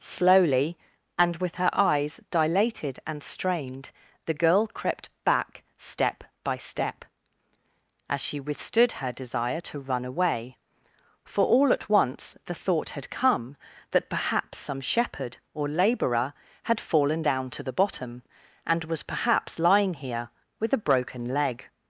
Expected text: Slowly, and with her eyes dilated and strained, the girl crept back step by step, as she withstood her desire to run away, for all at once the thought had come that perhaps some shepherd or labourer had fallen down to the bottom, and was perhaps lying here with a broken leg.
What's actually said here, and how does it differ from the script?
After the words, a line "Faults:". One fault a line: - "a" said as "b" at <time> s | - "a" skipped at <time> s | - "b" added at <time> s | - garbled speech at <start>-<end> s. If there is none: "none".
Slowly, and with her eyes dilated and strained, the girl crept back step by step, as she withstood her desire to run away, for all at once the thought had come that perhaps some shepherd or labourer had fallen down to the bottom, and was perhaps lying here with a broken leg.
Faults:
none